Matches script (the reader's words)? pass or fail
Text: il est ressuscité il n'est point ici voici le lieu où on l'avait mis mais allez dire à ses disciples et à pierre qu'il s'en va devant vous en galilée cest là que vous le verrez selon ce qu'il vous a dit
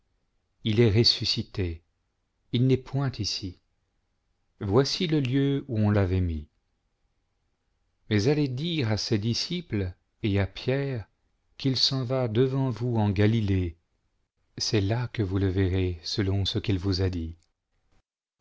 pass